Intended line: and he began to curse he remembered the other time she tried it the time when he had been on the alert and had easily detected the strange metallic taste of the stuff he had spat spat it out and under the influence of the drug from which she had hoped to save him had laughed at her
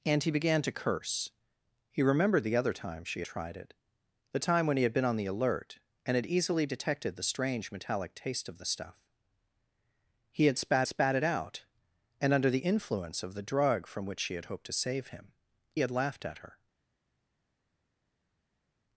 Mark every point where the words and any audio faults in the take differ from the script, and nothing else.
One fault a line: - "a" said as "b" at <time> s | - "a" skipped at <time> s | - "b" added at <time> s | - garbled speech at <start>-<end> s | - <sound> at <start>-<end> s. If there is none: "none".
none